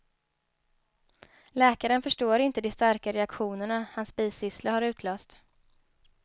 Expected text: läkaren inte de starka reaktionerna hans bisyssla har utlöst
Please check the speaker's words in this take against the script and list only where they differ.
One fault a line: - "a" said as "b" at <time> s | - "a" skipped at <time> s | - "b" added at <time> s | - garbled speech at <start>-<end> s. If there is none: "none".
- "förstår" added at 2.0 s